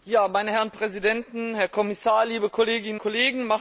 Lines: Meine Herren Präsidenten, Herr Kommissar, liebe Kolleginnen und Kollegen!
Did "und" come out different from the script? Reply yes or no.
yes